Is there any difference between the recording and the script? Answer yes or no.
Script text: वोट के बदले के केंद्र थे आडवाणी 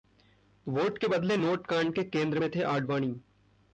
yes